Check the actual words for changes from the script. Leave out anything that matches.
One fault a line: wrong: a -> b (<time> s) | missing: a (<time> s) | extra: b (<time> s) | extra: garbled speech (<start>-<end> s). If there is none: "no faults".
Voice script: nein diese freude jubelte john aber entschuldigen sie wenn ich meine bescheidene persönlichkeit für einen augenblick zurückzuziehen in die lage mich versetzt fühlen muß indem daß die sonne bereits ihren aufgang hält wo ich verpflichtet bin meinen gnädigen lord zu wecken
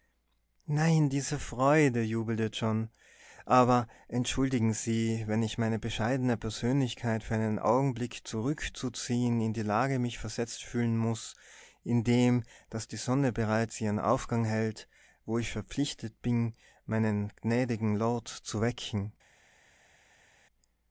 no faults